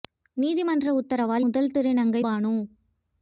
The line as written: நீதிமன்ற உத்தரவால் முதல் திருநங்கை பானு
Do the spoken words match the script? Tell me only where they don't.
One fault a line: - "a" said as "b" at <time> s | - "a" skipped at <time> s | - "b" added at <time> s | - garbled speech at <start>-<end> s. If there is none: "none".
none